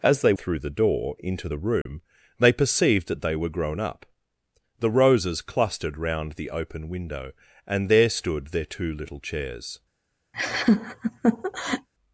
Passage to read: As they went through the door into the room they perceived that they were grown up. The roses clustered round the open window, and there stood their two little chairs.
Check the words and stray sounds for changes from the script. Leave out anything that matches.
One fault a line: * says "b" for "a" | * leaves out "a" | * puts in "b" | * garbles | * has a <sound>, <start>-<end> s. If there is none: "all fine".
* leaves out "went"
* has a dropout, 1.8-1.9 s
* has a laugh, 10.3-11.9 s